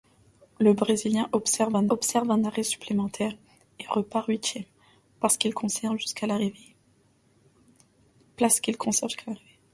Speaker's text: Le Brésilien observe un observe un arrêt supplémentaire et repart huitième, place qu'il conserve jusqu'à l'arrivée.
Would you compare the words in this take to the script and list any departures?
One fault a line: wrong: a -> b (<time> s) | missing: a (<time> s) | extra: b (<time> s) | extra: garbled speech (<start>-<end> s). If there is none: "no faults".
no faults